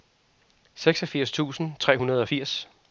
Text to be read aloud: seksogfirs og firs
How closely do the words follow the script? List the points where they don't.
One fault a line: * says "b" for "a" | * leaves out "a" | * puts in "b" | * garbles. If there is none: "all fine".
* puts in "tusind tre hundrede"